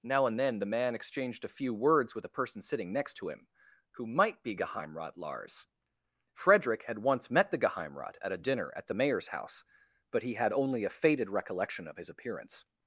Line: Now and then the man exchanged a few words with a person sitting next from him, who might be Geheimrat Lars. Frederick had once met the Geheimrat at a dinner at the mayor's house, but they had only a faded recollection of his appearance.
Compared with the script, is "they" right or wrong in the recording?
wrong